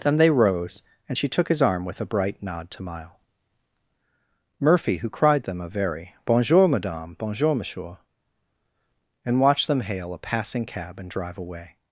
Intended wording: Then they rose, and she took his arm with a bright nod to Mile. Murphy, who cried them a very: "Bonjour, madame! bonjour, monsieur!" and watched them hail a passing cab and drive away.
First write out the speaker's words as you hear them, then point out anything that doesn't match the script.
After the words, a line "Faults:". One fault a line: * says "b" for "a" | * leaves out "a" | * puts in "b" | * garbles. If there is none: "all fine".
Then they rose, and she took his arm with a bright nod to Mile. Murphy, who cried them a very: "Bonjour, madame! bonjour, monsieur!" and watched them hail a passing cab and drive away.
Faults:
all fine